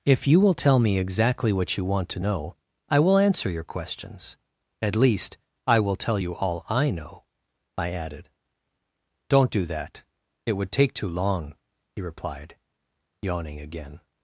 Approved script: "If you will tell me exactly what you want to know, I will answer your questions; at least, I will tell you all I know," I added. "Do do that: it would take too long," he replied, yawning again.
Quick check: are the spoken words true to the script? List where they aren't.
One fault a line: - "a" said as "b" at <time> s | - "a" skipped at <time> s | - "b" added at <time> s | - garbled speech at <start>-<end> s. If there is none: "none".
- "Do" said as "Don't" at 9.3 s